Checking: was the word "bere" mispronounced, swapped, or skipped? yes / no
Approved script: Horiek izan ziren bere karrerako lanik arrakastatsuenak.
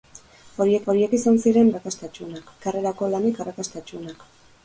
yes